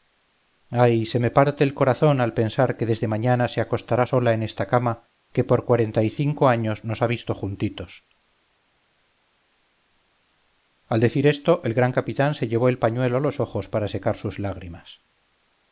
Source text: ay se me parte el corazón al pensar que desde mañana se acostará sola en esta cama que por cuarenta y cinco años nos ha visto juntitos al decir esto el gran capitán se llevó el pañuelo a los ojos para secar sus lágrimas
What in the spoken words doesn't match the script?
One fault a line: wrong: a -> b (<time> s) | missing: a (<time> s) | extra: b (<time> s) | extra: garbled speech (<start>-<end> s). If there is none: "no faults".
no faults